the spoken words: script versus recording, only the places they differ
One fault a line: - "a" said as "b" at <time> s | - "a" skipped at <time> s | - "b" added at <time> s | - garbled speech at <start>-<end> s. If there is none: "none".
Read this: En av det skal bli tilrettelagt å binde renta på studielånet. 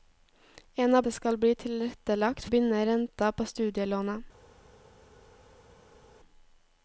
none